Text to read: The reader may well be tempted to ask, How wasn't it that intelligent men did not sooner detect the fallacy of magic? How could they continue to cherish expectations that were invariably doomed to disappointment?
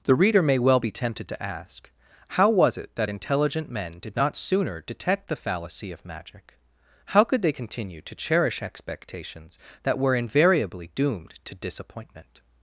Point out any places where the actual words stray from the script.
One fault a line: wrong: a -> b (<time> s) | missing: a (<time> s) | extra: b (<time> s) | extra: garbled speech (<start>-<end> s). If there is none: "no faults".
wrong: wasn't -> was (2.5 s)